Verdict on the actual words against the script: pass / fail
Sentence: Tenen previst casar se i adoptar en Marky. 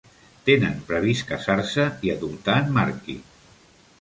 pass